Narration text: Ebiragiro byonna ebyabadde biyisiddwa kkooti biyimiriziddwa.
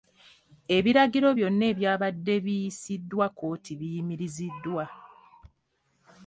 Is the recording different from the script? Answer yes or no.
no